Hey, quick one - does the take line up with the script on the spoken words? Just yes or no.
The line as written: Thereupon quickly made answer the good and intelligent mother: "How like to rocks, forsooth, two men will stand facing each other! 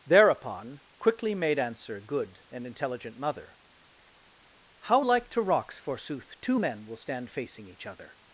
no